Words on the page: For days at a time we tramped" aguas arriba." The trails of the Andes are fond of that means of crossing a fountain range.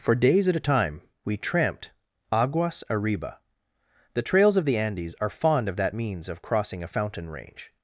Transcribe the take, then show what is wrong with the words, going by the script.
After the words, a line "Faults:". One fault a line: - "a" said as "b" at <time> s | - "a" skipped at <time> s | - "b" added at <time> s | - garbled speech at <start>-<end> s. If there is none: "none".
For days at a time we tramped" aguas arriba." The trails of the Andes are fond of that means of crossing a fountain range.
Faults:
none